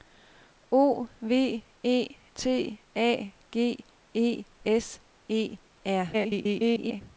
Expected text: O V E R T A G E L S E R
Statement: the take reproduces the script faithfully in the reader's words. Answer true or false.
false